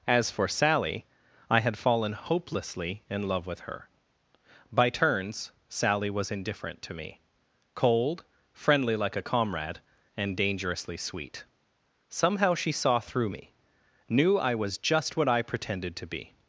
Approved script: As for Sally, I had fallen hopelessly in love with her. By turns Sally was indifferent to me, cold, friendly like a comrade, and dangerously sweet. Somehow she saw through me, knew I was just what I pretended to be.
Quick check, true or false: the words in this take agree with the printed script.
true